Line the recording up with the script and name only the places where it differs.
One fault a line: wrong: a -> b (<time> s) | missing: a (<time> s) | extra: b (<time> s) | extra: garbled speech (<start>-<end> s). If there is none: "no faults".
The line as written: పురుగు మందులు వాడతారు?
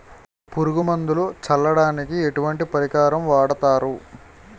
extra: చల్లడానికి ఎటువంటి పరికరం (1.4 s)